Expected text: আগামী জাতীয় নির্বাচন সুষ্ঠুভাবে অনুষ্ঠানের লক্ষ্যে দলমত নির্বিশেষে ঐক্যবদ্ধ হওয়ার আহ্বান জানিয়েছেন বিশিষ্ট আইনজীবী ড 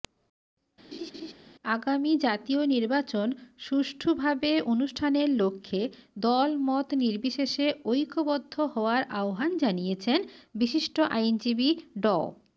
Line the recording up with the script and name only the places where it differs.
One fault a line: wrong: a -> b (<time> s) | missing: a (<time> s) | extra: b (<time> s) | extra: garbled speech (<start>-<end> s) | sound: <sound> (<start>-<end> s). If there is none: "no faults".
sound: laugh (0.9-1.3 s)